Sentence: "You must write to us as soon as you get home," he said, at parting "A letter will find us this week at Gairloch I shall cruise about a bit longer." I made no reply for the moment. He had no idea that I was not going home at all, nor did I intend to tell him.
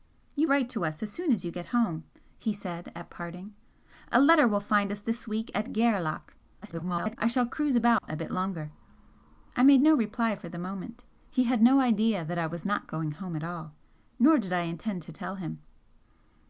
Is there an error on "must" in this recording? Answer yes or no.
yes